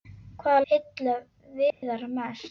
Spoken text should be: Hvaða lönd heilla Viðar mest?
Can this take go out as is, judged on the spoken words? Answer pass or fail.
fail